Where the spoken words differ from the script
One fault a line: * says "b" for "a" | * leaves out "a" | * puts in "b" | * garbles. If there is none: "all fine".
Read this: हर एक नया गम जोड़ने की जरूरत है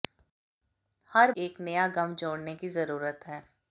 all fine